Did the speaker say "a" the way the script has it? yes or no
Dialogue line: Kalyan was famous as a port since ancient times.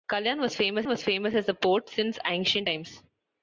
yes